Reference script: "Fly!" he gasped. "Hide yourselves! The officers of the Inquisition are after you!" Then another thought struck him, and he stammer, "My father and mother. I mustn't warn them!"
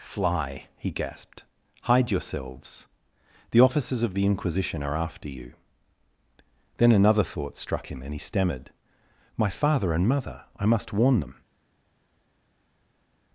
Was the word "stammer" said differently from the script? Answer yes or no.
yes